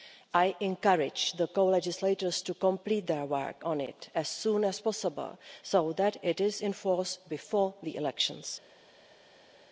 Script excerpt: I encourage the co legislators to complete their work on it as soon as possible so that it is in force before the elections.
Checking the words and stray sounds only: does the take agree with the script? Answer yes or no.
yes